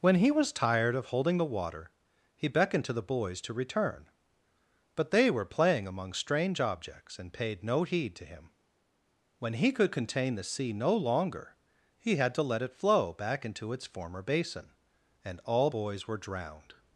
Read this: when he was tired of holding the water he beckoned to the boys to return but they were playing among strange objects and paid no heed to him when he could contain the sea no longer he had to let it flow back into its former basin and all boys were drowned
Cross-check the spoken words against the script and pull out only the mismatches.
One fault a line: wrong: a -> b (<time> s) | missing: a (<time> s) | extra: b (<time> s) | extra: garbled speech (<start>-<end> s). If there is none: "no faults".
no faults